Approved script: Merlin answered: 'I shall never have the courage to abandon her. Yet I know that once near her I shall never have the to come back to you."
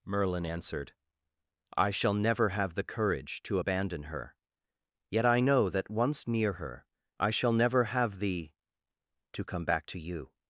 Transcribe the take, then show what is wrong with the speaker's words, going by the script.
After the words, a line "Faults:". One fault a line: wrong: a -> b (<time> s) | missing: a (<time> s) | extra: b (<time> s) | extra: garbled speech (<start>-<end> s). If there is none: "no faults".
Merlin answered: 'I shall never have the courage to abandon her. Yet I know that once near her I shall never have the to come back to you."
Faults:
no faults